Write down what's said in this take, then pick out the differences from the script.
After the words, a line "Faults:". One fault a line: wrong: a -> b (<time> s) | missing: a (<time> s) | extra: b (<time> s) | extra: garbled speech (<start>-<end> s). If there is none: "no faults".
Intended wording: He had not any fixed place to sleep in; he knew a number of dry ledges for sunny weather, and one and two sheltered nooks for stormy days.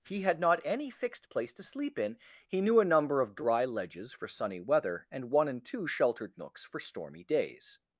He had not any fixed place to sleep in; he knew a number of dry ledges for sunny weather, and one and two sheltered nooks for stormy days.
Faults:
no faults